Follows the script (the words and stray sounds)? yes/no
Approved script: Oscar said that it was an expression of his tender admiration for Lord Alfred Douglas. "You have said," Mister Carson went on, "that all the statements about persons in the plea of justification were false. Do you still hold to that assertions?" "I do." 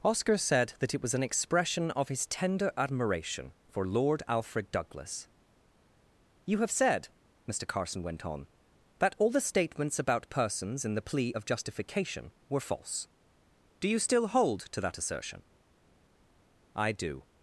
no